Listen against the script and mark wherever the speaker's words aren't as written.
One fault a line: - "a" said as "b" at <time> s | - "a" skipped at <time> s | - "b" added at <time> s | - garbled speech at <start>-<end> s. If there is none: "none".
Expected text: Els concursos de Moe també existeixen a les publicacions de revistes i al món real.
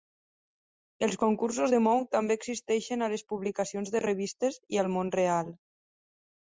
none